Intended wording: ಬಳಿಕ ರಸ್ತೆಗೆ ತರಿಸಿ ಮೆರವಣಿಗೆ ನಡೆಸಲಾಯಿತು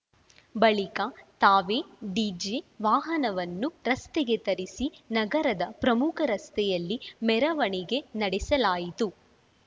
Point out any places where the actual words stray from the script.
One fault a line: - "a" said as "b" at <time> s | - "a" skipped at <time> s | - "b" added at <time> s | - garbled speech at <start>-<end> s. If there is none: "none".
- "ತಾವೇ ಡಿಜೆ ವಾಹನವನ್ನು" added at 1.4 s
- "ನಗರದ ಪ್ರಮುಖ ರಸ್ತೆಯಲ್ಲಿ" added at 5.1 s